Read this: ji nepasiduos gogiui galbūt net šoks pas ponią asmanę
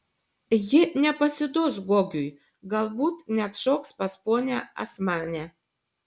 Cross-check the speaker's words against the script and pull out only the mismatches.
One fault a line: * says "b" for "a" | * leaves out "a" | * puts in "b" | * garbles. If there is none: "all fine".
all fine